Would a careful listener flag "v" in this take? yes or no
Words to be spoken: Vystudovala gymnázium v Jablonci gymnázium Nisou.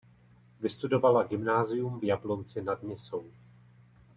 no